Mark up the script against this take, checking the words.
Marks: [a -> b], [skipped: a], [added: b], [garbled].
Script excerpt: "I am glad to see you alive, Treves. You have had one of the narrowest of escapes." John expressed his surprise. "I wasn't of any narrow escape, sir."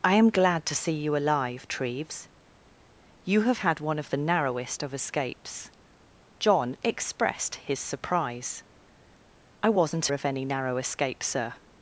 "I am glad to see you alive, Treves. You have had one of the narrowest of escapes." John expressed his surprise. "I wasn't of any narrow escape, sir."